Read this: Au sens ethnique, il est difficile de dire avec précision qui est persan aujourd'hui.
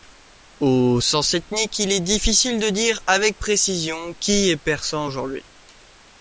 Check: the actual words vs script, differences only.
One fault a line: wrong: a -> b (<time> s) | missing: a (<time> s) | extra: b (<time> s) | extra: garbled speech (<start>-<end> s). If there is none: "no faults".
no faults